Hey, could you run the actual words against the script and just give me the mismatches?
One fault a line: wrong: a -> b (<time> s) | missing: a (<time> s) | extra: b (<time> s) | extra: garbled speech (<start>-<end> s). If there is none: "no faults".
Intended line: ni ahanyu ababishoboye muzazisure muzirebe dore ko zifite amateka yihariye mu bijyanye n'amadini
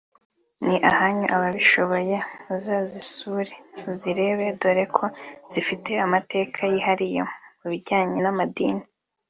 no faults